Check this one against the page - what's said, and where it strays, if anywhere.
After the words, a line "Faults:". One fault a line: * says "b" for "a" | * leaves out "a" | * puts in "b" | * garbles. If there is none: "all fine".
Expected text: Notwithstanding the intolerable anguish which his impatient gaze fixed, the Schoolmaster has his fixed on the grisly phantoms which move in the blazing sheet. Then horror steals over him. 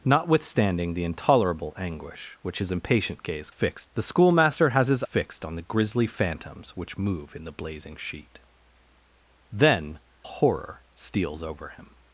Notwithstanding the intolerable anguish which his impatient gaze fixed, the Schoolmaster has his fixed on the grisly phantoms which move in the blazing sheet. Then horror steals over him.
Faults:
all fine